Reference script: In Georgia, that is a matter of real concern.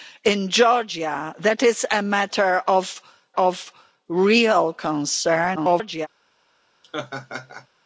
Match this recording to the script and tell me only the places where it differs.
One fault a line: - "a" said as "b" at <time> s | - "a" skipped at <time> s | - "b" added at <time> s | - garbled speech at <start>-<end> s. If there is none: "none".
- "of" added at 3.4 s
- garbled speech at 5.6-6.1 s